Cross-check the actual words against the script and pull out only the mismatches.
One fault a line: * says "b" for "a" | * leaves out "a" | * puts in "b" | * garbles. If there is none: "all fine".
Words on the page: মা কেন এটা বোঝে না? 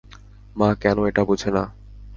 all fine